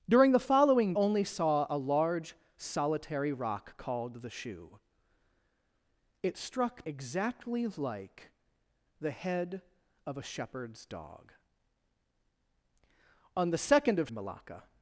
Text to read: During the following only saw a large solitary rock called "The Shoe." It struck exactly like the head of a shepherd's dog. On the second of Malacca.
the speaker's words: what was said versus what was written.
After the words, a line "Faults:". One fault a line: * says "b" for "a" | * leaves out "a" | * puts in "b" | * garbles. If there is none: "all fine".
During the following only saw a large solitary rock called "The Shoe." It struck exactly like the head of a shepherd's dog. On the second of Malacca.
Faults:
all fine